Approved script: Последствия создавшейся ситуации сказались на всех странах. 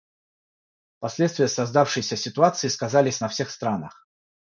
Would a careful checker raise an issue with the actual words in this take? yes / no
no